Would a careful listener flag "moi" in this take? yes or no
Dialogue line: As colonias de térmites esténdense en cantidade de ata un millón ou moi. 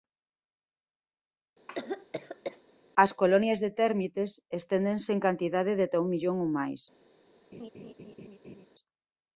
yes